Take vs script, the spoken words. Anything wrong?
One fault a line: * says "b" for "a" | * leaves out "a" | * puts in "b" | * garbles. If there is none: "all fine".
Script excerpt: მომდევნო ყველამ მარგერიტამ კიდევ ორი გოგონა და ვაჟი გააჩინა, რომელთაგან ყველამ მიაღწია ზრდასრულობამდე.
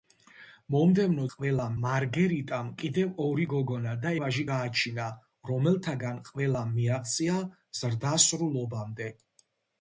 all fine